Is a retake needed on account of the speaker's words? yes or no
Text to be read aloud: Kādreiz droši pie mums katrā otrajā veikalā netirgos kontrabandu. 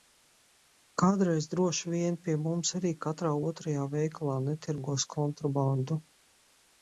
yes